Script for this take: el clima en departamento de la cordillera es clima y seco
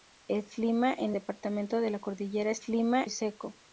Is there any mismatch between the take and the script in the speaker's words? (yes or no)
no